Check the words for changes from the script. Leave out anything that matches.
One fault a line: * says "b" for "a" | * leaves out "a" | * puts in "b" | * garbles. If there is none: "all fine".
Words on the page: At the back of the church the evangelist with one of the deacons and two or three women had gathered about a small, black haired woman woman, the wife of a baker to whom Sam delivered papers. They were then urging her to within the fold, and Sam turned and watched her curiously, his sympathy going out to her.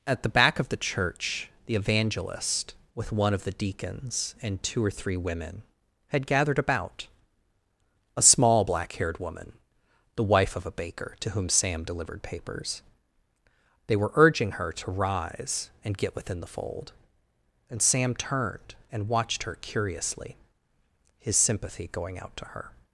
* leaves out "woman"
* leaves out "then"
* puts in "rise and get"